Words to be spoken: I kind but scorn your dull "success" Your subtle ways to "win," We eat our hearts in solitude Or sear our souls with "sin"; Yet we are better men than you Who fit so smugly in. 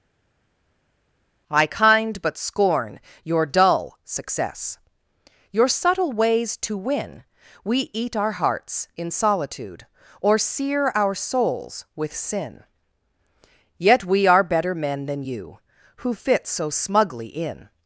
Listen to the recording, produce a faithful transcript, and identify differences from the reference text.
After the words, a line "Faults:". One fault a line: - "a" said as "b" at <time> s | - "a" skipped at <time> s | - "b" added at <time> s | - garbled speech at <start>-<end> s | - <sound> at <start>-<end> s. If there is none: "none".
I kind but scorn your dull "success" Your subtle ways to "win," We eat our hearts in solitude Or sear our souls with "sin"; Yet we are better men than you Who fit so smugly in.
Faults:
none